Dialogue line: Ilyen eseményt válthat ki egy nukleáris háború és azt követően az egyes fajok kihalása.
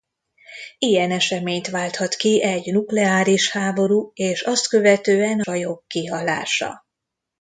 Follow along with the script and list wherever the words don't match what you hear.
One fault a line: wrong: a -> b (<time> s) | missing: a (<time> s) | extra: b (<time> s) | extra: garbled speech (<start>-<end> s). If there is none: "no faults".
missing: az egyes (5.4 s)